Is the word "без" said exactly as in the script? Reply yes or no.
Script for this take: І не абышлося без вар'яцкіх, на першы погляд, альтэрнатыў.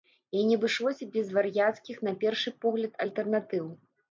yes